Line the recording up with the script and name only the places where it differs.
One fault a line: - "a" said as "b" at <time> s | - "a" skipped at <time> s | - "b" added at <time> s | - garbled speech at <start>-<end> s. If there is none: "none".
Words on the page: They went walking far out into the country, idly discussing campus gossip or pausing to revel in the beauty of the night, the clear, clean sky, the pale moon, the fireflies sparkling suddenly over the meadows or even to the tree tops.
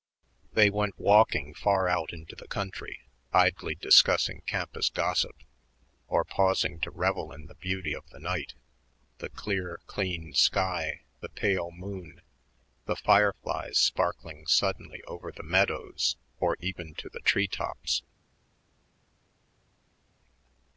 none